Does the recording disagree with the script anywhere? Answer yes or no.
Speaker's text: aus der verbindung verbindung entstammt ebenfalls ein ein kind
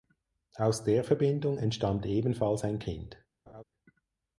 yes